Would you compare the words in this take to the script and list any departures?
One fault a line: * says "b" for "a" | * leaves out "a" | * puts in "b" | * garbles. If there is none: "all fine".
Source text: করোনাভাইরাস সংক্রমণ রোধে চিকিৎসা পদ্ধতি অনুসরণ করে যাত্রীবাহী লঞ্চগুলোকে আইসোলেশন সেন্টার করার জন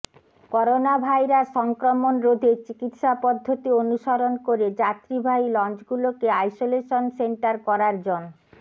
all fine